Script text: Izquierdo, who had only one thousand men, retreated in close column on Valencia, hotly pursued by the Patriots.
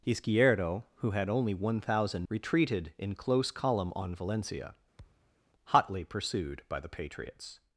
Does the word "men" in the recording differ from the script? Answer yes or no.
yes